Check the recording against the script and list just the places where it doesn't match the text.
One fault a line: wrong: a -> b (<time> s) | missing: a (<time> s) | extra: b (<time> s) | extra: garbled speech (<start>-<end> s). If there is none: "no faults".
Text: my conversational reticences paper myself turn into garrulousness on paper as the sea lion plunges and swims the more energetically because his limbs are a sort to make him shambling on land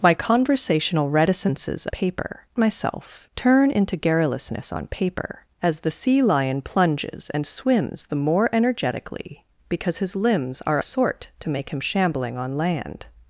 no faults